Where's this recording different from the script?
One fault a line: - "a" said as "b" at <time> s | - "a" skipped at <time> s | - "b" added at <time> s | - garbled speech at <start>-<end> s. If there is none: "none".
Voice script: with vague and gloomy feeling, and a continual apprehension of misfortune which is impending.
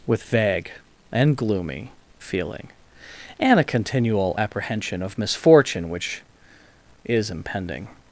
none